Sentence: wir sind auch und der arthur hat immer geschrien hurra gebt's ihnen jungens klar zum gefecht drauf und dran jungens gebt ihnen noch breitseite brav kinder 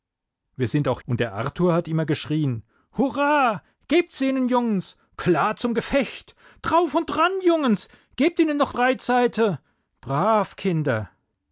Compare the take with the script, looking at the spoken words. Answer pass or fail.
pass